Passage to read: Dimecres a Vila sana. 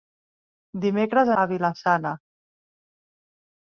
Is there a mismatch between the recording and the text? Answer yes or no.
no